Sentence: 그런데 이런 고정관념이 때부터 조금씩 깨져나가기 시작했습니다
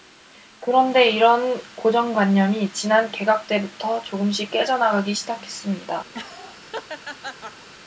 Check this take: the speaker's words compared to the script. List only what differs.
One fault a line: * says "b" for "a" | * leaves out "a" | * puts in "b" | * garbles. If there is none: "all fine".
* puts in "지난 개각"